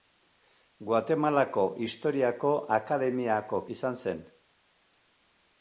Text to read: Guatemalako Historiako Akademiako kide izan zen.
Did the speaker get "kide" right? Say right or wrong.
wrong